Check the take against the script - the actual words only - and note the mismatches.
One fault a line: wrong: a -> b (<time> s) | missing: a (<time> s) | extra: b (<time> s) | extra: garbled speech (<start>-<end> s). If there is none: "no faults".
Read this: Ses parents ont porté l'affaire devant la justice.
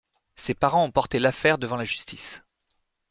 no faults